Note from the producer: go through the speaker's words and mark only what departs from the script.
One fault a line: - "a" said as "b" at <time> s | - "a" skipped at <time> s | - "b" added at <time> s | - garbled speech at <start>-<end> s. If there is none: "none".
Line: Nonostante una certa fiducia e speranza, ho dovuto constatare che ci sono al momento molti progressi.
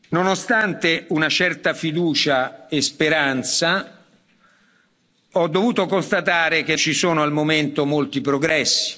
none